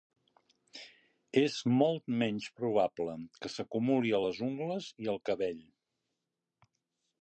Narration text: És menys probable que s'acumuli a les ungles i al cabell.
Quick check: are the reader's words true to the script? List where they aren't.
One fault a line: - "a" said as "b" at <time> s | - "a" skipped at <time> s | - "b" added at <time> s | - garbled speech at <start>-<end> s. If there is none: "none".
- "molt" added at 1.8 s